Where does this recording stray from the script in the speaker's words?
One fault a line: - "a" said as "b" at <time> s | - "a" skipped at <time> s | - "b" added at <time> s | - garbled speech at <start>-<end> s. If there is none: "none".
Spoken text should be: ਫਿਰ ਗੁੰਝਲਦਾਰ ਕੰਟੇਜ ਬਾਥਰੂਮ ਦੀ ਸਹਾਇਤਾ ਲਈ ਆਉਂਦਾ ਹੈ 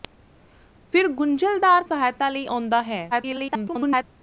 - "ਕੰਟੇਜ ਬਾਥਰੂਮ ਦੀ" skipped at 1.8 s
- garbled speech at 3.1-4.0 s